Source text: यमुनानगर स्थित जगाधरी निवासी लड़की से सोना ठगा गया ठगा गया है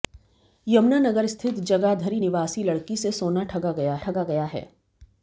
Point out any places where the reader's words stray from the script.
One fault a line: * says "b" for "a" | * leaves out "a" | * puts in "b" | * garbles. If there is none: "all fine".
all fine